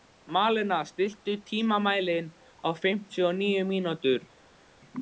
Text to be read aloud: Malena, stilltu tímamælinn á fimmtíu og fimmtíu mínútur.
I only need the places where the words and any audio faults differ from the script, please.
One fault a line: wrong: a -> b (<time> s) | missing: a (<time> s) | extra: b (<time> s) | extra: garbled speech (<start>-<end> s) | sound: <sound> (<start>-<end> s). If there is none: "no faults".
wrong: fimmtíu -> níu (3.4 s)